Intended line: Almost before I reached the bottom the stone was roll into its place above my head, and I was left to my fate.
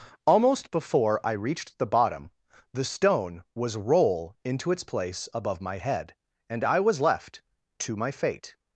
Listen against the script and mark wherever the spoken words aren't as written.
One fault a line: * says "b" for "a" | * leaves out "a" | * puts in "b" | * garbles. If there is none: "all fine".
all fine